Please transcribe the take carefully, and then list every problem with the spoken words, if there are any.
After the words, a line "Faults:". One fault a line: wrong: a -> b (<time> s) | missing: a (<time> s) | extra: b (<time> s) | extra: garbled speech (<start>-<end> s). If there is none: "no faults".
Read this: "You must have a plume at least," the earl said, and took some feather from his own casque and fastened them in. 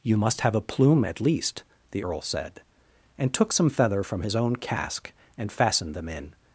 "You must have a plume at least," the earl said, and took some feather from his own casque and fastened them in.
Faults:
no faults